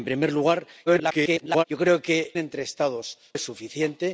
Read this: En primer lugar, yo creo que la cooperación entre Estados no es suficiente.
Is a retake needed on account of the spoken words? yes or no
yes